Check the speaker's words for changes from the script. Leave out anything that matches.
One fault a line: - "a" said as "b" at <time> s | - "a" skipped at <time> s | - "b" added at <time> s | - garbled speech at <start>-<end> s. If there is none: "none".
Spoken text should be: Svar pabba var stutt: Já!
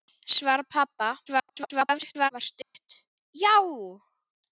- garbled speech at 1.3-2.3 s